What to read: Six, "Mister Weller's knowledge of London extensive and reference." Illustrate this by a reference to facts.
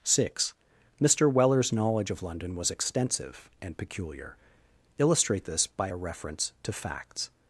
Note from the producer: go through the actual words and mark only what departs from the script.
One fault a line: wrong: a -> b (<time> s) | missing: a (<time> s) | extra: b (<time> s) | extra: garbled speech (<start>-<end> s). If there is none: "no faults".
extra: was (2.5 s)
wrong: reference -> peculiar (3.8 s)